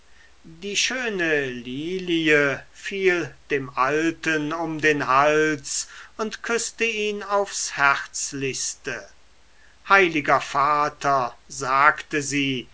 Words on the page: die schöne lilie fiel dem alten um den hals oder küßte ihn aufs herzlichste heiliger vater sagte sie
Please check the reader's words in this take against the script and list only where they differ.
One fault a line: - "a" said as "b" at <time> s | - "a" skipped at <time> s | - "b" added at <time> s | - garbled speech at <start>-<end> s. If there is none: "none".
- "oder" said as "und" at 6.2 s